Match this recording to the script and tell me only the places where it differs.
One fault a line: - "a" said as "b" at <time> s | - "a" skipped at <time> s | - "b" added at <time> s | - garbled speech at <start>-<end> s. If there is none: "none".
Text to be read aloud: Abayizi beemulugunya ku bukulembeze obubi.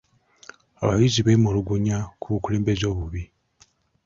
none